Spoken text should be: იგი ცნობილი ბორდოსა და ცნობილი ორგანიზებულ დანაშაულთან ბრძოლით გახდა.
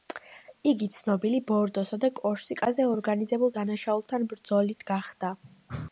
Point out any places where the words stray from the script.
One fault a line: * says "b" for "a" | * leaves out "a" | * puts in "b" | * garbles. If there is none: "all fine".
* says "კორსიკაზე" for "ცნობილი"